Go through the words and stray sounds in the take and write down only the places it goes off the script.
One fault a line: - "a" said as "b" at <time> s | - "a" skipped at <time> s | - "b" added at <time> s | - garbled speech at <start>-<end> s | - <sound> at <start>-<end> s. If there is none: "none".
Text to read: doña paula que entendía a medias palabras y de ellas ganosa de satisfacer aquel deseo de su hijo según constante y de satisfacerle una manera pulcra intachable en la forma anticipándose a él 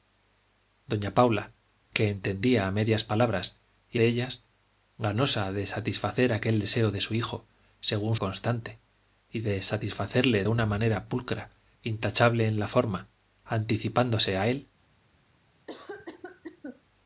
- cough at 15.7-16.8 s